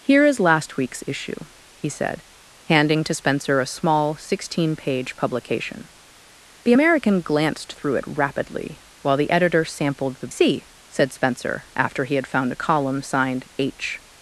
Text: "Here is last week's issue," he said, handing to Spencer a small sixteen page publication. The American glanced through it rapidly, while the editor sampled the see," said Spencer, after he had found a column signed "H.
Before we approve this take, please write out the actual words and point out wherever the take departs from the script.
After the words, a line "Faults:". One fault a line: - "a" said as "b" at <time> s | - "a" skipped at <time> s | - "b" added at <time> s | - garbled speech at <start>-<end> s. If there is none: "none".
"Here is last week's issue," he said, handing to Spencer a small sixteen page publication. The American glanced through it rapidly, while the editor sampled the see," said Spencer, after he had found a column signed "H.
Faults:
none